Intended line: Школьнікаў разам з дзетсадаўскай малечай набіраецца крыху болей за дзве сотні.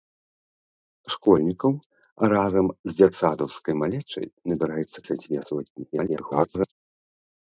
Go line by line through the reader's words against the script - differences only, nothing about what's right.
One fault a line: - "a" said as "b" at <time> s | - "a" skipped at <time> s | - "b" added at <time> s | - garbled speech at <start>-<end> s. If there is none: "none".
- "крыху болей" skipped at 5.0 s
- garbled speech at 5.9-6.7 s